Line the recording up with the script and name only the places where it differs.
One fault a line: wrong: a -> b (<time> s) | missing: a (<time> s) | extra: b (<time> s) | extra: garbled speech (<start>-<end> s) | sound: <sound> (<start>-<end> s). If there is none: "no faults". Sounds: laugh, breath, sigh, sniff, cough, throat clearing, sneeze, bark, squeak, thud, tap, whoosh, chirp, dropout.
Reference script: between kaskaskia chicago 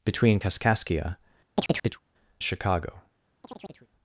sound: chirp (1.5-2.0 s)
sound: chirp (3.4-3.9 s)